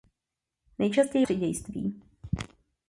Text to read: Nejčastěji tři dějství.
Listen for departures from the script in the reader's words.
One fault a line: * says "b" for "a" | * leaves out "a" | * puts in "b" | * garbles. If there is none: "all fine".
all fine